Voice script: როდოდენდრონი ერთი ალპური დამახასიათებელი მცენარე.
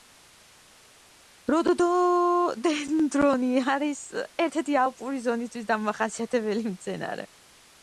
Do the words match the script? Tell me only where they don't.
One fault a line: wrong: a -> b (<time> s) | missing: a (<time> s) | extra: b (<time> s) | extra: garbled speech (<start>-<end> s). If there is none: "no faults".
extra: არის ერთ (3.8 s)
extra: ზონისთვის (5.3 s)